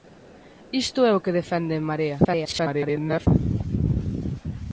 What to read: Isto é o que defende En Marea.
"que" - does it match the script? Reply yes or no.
yes